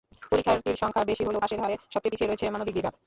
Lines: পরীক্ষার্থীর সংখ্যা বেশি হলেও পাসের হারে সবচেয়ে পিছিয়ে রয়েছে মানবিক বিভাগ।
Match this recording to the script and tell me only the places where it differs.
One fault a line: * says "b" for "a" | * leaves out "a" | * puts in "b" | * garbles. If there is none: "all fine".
all fine